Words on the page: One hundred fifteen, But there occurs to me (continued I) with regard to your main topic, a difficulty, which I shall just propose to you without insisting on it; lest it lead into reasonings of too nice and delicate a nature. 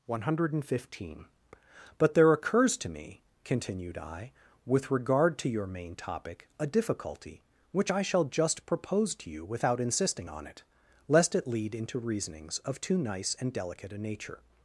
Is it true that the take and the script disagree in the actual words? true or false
false